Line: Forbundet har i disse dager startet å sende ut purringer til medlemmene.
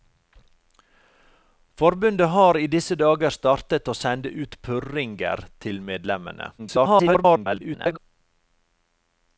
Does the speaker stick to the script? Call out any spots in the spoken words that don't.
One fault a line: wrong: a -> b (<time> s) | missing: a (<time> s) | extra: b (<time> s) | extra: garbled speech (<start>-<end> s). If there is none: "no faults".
extra: garbled speech (6.6-8.0 s)